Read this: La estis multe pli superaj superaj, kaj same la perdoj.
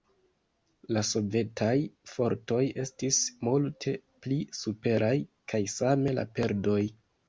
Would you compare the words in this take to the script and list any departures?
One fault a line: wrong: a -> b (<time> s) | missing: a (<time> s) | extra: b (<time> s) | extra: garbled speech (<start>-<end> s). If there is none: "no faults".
extra: sovetaj fortoj (1.1 s)
missing: superaj (5.2 s)